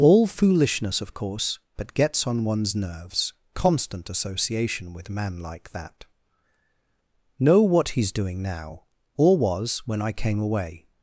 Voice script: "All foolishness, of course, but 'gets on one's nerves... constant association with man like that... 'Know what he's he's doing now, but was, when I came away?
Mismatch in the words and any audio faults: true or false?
true